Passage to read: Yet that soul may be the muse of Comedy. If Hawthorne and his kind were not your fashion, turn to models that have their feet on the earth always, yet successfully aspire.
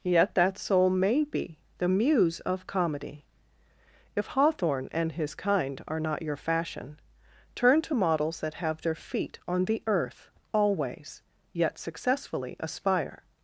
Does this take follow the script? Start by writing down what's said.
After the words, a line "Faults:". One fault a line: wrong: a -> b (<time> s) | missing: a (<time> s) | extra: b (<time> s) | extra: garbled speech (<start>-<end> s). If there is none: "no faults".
Yet that soul may be the muse of Comedy. If Hawthorne and his kind are not your fashion, turn to models that have their feet on the earth always, yet successfully aspire.
Faults:
wrong: were -> are (5.9 s)